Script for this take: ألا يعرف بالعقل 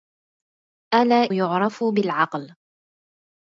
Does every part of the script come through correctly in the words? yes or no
yes